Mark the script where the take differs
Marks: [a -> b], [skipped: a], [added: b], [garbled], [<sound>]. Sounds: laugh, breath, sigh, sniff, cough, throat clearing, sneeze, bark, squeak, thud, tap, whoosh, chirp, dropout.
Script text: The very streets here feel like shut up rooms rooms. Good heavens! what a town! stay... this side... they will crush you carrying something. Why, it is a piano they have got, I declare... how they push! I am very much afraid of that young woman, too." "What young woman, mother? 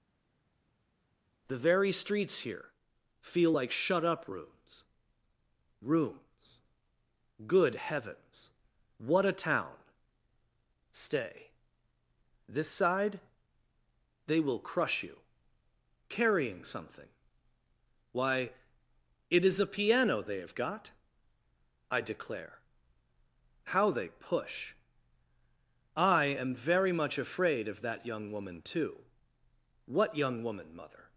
The very streets here feel like shut up rooms rooms. Good heavens! what a town! stay... this side... they will crush you carrying something. Why, it is a piano they have got, I declare... how they push! I am very much afraid of that young woman, too." "What young woman, mother?